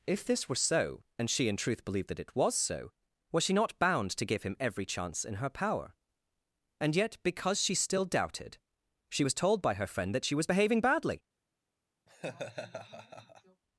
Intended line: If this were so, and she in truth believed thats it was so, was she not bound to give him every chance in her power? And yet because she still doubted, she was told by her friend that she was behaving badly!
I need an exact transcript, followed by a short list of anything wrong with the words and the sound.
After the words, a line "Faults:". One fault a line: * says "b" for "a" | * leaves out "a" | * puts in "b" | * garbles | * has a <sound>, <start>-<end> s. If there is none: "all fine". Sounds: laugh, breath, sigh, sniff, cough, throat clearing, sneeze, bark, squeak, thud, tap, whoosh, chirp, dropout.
If this were so, and she in truth believed that it was so, was she not bound to give him every chance in her power? And yet because she still doubted, she was told by her friend that she was behaving badly!
Faults:
* says "that" for "thats"
* has a laugh, 12.1-13.6 s